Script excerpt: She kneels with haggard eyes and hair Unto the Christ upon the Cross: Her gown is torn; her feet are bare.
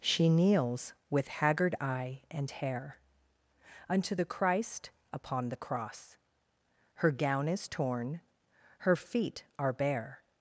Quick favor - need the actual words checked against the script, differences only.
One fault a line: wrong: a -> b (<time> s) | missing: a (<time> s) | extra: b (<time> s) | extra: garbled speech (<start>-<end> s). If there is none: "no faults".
wrong: eyes -> eye (1.8 s)